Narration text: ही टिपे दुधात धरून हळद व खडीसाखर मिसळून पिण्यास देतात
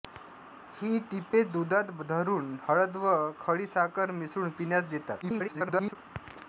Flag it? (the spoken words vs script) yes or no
yes